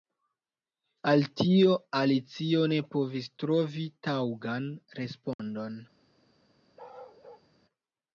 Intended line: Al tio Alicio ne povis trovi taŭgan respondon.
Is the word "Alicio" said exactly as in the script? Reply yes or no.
yes